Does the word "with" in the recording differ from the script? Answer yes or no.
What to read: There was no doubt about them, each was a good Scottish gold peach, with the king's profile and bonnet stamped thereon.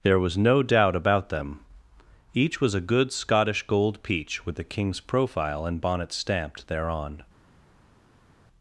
no